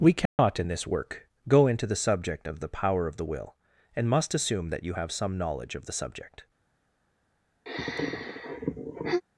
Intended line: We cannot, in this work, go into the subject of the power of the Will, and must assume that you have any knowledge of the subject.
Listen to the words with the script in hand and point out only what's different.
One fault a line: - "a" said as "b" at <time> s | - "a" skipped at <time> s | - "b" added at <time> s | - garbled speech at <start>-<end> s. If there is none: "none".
- "any" said as "some" at 5.1 s